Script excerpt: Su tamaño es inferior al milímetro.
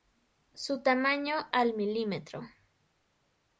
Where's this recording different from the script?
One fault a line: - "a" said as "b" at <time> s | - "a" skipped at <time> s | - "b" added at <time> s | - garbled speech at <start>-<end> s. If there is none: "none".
- "es inferior" skipped at 1.5 s